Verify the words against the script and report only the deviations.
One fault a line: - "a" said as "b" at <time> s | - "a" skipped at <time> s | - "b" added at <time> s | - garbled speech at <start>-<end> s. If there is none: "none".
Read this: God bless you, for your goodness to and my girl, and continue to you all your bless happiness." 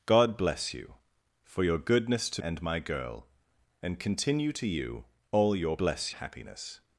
none